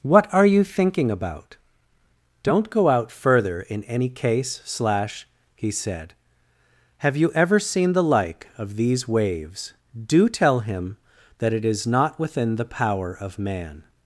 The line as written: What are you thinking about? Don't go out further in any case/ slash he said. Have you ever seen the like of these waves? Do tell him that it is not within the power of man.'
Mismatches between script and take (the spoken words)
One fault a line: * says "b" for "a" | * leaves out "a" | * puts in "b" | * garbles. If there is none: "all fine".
all fine